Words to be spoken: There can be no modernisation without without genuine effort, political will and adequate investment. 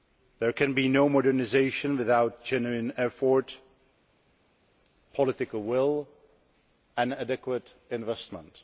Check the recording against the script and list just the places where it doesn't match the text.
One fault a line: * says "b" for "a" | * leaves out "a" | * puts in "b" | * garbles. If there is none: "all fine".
* leaves out "without"